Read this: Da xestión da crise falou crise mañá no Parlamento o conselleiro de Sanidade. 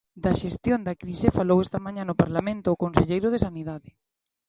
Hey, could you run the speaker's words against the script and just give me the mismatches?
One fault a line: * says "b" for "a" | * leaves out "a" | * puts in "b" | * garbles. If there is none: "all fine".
* says "esta" for "crise"